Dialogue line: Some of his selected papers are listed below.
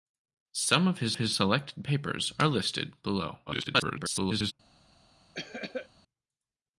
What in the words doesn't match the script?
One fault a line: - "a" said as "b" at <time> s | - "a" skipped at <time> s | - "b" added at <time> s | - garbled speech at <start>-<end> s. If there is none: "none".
- "his" added at 1.2 s
- garbled speech at 3.5-4.5 s